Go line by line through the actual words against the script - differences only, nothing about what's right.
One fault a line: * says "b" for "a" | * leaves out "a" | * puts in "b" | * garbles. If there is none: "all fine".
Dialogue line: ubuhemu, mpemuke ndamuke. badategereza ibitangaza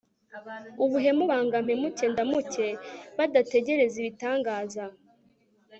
* puts in "banga"